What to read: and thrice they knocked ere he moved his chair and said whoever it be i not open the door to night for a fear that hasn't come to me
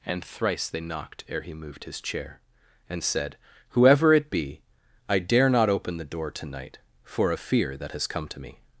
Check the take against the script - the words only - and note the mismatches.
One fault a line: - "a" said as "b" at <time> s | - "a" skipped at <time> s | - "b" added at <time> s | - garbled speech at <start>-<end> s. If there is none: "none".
- "dare" added at 5.2 s
- "hasn't" said as "has" at 7.9 s